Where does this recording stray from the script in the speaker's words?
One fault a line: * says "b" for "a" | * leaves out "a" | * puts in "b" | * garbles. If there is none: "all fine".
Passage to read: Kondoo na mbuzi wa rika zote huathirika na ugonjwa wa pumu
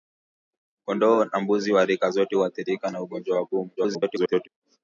* garbles